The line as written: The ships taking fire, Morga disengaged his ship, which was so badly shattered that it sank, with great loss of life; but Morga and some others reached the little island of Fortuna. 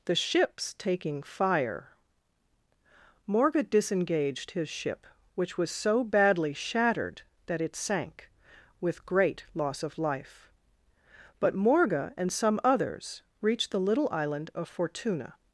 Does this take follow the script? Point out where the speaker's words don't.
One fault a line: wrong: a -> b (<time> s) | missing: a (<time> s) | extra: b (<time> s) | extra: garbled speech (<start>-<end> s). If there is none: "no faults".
no faults